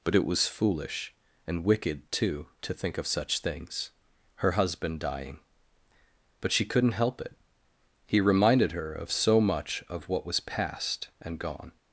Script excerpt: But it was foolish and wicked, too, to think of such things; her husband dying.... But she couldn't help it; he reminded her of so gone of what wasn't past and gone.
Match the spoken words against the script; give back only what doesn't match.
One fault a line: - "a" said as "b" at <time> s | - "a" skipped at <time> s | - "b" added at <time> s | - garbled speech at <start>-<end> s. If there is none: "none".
- "gone" said as "much" at 9.4 s
- "wasn't" said as "was" at 10.2 s